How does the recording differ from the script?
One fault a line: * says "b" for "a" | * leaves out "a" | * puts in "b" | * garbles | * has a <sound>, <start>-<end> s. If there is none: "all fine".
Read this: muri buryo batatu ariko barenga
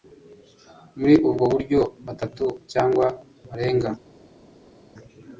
* puts in "ubwo"
* says "cyangwa" for "ariko"